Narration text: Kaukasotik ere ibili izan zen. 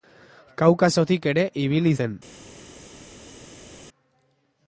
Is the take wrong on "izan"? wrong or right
wrong